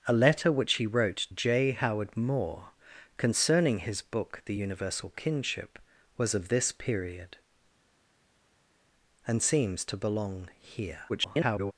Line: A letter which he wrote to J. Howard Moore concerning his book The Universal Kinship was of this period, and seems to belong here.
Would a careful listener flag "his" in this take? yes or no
no